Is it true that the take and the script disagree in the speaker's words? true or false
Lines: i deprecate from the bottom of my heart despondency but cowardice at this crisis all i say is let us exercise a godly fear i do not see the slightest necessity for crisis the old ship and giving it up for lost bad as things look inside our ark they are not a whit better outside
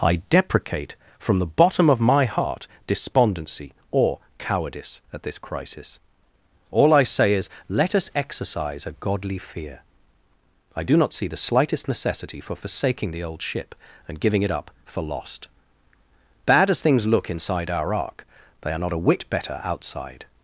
true